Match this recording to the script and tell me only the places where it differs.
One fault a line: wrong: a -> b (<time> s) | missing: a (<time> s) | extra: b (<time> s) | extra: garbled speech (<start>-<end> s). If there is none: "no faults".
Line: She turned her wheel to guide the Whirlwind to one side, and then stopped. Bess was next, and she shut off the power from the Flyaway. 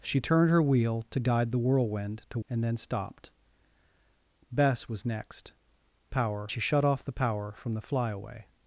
missing: one side (2.4 s)
wrong: and -> power (6.1 s)